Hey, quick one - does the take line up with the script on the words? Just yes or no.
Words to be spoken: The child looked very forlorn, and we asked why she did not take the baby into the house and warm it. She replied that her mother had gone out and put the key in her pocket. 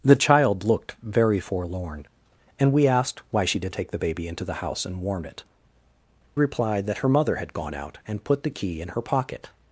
no